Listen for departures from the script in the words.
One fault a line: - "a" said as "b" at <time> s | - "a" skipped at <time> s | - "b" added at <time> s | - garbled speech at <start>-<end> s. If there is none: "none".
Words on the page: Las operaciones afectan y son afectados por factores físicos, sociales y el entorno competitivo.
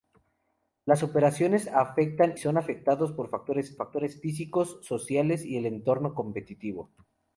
- "y" skipped at 2.3 s
- "factores" added at 3.8 s